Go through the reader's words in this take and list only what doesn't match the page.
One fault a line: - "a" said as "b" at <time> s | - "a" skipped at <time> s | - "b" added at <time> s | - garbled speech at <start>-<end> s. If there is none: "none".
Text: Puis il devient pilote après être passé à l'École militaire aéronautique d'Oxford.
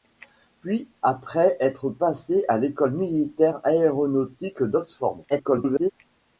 - "il devient pilote" skipped at 0.9 s
- garbled speech at 5.3-5.9 s